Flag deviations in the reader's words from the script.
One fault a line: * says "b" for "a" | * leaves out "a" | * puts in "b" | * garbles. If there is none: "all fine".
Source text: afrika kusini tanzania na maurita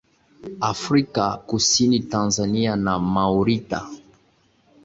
all fine